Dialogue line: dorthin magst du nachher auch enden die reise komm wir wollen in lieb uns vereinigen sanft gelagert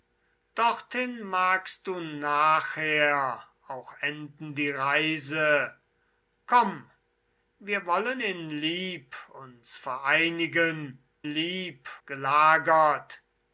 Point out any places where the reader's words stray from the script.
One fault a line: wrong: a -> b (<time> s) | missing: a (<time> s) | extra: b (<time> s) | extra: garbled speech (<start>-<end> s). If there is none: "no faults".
wrong: sanft -> lieb (11.2 s)